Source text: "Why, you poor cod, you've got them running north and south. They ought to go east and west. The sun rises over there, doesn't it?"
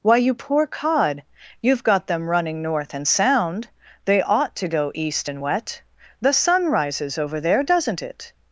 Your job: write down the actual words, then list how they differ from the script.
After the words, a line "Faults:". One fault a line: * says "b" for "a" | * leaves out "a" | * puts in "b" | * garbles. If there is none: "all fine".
"Why, you poor cod, you've got them running north and sound. They ought to go east and wet. The sun rises over there, doesn't it?"
Faults:
* says "sound" for "south"
* says "wet" for "west"